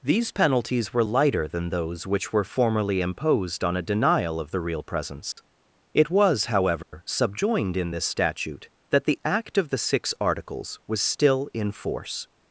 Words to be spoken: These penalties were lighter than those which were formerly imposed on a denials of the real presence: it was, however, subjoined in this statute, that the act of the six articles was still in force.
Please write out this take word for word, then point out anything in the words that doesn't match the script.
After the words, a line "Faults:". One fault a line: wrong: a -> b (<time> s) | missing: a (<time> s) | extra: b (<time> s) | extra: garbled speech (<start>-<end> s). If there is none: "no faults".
These penalties were lighter than those which were formerly imposed on a denial of the real presence: it was, however, subjoined in this statute, that the act of the six articles was still in force.
Faults:
wrong: denials -> denial (3.8 s)